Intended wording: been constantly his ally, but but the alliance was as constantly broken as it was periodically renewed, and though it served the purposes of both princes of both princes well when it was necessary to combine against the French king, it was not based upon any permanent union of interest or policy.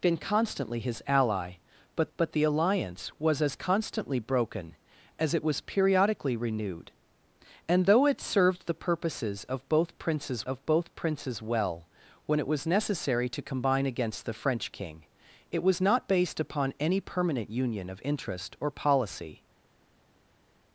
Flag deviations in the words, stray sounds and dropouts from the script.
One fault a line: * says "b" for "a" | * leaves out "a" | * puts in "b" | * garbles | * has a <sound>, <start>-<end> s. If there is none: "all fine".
all fine